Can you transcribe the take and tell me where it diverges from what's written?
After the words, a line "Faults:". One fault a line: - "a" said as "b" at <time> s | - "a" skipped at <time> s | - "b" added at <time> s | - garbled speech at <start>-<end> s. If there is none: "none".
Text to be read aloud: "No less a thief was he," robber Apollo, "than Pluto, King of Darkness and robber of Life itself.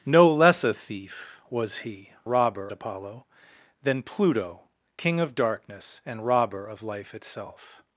"No less a thief was he," robber Apollo, "than Pluto, King of Darkness and robber of Life itself.
Faults:
none